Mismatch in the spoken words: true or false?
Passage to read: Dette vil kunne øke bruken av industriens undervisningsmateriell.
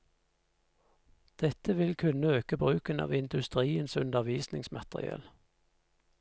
false